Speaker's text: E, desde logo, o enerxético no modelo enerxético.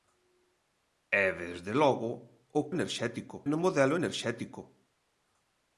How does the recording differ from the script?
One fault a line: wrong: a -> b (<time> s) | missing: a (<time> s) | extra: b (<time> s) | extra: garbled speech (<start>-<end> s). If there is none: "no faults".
no faults